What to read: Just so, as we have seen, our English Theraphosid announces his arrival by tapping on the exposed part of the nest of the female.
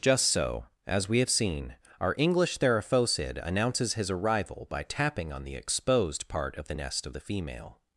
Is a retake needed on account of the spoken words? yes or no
no